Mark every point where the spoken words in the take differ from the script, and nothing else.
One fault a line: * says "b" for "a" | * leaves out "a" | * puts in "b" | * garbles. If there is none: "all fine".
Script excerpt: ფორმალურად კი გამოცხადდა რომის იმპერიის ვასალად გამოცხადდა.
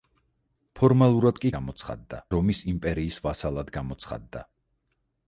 all fine